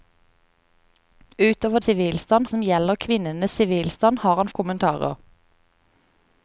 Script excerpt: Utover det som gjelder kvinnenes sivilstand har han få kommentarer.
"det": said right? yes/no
no